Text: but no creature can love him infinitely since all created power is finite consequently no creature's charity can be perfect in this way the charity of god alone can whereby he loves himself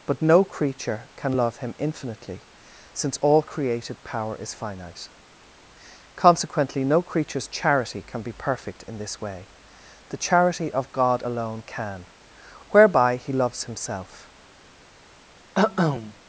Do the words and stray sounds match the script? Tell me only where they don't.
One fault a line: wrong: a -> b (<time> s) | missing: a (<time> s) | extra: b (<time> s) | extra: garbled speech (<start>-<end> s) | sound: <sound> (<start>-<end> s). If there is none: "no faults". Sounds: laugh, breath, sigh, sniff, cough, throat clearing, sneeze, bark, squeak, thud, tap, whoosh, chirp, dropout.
sound: cough (15.5-16.1 s)